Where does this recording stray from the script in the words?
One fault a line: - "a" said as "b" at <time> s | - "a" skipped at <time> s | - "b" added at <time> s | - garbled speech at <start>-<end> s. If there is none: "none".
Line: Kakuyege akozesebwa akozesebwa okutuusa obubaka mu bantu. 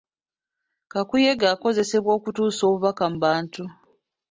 - "akozesebwa" skipped at 2.1 s